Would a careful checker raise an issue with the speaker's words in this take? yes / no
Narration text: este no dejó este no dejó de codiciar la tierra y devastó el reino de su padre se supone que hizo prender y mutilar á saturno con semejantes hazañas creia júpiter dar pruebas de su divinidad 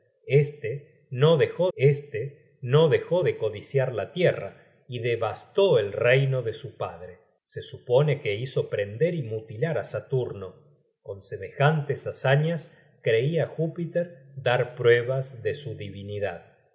no